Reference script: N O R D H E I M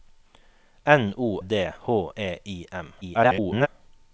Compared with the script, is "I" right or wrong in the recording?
right